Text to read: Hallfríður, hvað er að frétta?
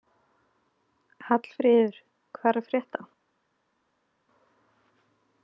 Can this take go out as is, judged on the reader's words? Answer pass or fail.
pass